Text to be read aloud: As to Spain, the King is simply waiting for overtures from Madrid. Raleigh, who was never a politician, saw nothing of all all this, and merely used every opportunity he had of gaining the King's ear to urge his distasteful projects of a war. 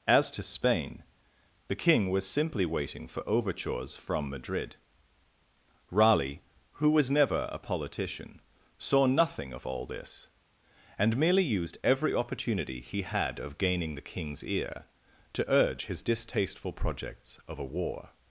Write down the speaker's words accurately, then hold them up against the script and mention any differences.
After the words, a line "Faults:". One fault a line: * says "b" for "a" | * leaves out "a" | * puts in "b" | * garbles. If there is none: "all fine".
As to Spain, the King was simply waiting for overtures from Madrid. Raleigh, who was never a politician, saw nothing of all this, and merely used every opportunity he had of gaining the King's ear to urge his distasteful projects of a war.
Faults:
* says "was" for "is"
* leaves out "all"